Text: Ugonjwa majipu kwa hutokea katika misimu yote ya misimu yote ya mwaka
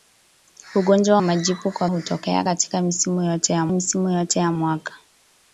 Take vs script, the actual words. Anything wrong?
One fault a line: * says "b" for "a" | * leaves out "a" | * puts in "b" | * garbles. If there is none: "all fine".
all fine